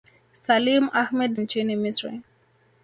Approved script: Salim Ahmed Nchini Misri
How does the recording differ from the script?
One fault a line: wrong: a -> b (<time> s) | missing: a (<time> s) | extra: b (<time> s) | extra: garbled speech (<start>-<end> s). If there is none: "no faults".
no faults